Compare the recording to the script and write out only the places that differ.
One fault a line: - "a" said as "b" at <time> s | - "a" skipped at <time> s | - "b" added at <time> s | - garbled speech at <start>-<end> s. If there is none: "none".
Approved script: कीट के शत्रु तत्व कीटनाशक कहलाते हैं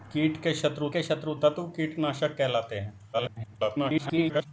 - "के शत्रु" added at 0.9 s
- garbled speech at 3.1-4.5 s